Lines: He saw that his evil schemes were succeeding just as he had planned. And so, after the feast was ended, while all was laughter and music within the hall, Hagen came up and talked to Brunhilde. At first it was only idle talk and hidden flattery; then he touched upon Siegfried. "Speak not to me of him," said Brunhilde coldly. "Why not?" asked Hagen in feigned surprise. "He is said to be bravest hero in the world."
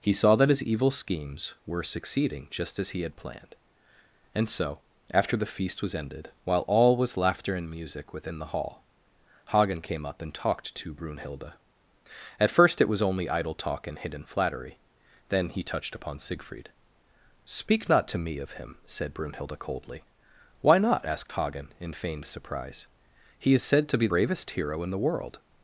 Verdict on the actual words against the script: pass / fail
pass